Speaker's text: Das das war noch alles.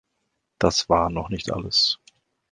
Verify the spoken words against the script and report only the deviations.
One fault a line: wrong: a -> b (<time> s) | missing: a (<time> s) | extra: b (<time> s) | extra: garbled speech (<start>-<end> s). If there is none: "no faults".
missing: das (0.9 s)
extra: nicht (1.3 s)